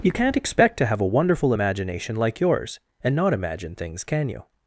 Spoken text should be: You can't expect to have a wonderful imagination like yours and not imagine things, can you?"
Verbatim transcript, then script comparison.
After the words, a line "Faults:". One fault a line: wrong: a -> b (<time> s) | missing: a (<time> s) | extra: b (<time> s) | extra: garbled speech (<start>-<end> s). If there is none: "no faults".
You can't expect to have a wonderful imagination like yours and not imagine things, can you?"
Faults:
no faults